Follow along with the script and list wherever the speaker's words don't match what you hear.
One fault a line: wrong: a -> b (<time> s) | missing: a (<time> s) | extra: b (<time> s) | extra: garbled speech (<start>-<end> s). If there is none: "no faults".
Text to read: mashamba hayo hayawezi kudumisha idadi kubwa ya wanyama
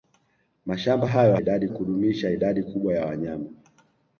wrong: hayawezi -> idadi (1.4 s)